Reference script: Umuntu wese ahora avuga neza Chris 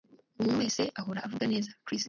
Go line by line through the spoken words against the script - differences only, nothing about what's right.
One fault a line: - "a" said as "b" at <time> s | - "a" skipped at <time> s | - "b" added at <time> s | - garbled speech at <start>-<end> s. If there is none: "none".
none